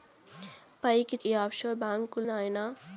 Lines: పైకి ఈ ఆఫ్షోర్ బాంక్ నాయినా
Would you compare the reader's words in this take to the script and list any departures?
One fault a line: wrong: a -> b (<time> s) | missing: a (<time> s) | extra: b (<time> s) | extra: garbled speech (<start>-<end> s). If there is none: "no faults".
no faults